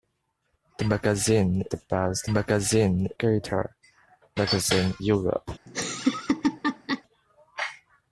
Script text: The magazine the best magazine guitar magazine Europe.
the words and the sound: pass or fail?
fail